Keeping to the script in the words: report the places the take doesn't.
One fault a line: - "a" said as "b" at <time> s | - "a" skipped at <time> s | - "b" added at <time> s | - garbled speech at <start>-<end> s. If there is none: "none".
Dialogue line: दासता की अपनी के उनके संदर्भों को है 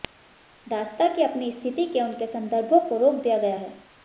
- "स्थिति" added at 1.5 s
- "रोक दिया गया" added at 3.0 s